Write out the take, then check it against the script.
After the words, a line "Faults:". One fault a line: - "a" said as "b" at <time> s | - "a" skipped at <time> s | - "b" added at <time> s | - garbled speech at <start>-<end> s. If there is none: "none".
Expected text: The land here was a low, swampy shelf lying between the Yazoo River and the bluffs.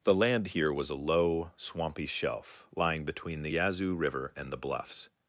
The land here was a low, swampy shelf lying between the Yazoo River and the bluffs.
Faults:
none